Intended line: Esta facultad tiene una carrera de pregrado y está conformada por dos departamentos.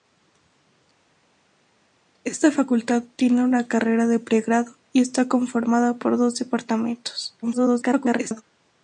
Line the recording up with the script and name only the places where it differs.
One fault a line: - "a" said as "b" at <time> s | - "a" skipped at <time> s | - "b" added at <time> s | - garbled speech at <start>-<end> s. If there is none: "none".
- garbled speech at 7.4-8.4 s